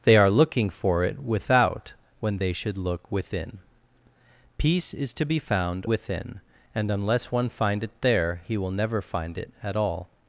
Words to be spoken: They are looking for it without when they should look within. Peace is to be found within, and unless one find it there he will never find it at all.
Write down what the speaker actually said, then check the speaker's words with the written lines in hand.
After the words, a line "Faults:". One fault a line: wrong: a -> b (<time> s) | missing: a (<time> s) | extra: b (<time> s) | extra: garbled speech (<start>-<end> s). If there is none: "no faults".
They are looking for it without when they should look within. Peace is to be found within, and unless one find it there he will never find it at all.
Faults:
no faults